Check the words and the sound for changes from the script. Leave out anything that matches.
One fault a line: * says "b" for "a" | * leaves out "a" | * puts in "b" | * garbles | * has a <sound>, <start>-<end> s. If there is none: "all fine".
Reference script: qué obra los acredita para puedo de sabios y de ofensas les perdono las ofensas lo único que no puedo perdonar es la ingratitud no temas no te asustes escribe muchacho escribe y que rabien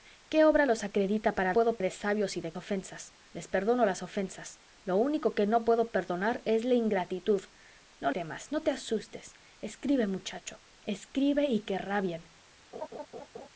* has a laugh, 12.7-13.5 s